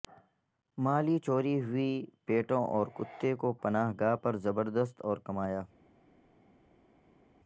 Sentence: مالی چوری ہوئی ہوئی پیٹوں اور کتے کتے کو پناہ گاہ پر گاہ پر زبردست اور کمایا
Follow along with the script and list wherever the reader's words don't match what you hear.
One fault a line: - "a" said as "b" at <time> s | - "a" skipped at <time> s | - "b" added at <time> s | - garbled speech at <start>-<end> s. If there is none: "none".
- "ہوئی" skipped at 1.9 s
- "کتے" skipped at 3.3 s
- "گاہ پر" skipped at 4.4 s